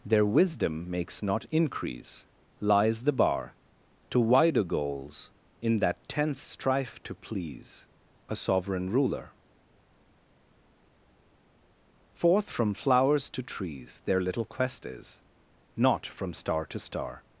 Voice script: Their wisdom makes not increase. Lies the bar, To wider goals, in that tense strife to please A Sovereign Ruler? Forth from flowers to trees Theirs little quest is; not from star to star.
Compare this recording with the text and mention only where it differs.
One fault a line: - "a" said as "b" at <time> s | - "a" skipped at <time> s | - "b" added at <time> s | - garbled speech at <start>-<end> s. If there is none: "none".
- "Theirs" said as "Their" at 14.1 s